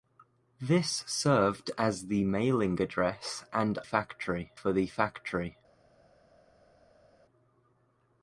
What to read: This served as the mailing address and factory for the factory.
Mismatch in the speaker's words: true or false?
false